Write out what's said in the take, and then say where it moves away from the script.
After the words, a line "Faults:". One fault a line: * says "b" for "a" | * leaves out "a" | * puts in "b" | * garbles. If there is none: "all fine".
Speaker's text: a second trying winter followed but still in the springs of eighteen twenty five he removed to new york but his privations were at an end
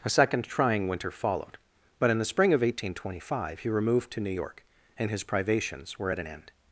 a second trying winter followed but in the spring of eighteen twenty five he removed to new york and his privations were at an end
Faults:
* leaves out "still"
* says "spring" for "springs"
* says "and" for "but"